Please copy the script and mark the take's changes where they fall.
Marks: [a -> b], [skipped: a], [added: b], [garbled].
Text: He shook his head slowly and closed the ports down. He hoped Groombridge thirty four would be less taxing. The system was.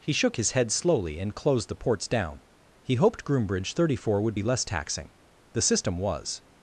He shook his head slowly and closed the ports down. He hoped Groombridge thirty four would be less taxing. The system was.